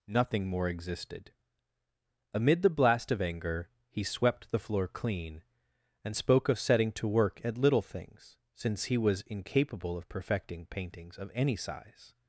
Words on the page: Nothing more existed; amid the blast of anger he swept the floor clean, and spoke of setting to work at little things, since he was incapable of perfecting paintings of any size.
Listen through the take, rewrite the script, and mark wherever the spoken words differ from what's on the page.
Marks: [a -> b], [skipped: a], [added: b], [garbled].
Nothing more existed; amid the blast of anger he swept the floor clean, and spoke of setting to work at little things, since he was incapable of perfecting paintings of any size.